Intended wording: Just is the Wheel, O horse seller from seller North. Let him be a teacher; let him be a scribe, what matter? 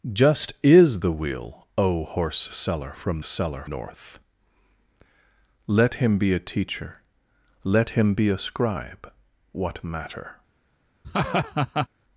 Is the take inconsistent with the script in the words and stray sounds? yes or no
yes